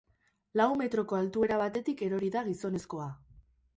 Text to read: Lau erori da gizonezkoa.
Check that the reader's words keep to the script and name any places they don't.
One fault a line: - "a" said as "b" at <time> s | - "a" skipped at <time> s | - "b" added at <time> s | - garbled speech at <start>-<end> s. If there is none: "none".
- "metroko altuera batetik" added at 0.8 s